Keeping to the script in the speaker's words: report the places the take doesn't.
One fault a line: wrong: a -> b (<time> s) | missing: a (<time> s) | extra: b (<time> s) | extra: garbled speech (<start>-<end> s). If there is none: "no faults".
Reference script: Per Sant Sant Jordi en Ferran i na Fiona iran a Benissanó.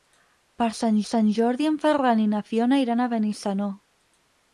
no faults